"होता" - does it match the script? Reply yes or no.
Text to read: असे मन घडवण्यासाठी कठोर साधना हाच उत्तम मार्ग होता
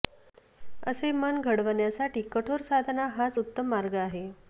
no